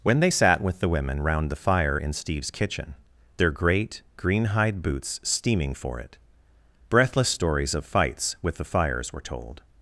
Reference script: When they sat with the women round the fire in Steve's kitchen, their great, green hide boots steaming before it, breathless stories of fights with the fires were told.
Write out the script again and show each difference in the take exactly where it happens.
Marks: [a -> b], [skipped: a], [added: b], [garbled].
When they sat with the women round the fire in Steve's kitchen, their great, green hide boots steaming [before -> for] it, breathless stories of fights with the fires were told.